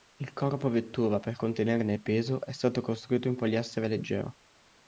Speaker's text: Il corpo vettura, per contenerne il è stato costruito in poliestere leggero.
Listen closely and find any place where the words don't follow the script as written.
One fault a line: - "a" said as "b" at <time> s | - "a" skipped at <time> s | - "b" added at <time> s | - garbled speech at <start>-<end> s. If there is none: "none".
- "peso" added at 2.0 s